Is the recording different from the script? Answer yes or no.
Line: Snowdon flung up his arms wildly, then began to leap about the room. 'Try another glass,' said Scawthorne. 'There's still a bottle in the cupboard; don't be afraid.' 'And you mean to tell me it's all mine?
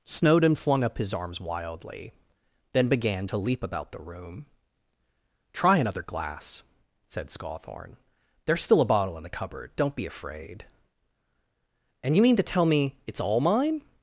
no